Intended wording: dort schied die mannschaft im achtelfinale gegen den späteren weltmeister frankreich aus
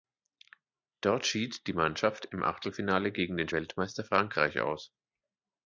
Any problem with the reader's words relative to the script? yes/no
yes